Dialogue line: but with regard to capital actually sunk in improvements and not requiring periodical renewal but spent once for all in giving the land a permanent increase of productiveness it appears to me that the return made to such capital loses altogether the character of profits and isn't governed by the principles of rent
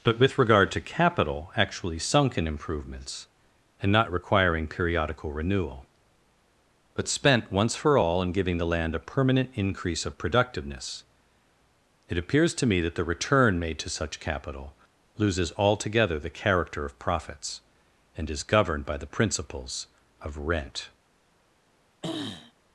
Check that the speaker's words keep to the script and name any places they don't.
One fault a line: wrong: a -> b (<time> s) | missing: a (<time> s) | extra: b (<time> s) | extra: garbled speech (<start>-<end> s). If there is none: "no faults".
wrong: isn't -> is (18.3 s)